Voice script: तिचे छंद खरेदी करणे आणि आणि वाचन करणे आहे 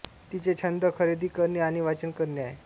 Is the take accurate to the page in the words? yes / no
no